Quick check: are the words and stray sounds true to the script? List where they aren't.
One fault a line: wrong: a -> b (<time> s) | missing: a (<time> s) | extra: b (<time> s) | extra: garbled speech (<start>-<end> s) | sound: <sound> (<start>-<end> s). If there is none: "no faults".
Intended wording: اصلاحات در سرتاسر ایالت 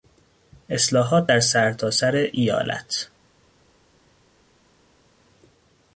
no faults